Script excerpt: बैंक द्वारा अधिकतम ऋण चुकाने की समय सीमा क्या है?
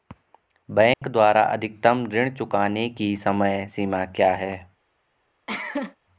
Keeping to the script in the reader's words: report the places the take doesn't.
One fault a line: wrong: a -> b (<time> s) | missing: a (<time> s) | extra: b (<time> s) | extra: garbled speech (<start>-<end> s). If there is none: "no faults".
no faults